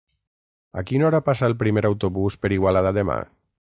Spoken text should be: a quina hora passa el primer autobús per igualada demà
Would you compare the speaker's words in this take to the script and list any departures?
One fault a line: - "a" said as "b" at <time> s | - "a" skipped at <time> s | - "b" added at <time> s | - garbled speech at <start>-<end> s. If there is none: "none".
none